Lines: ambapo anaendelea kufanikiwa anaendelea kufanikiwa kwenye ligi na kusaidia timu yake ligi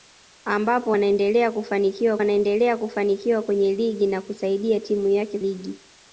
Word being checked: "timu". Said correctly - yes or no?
yes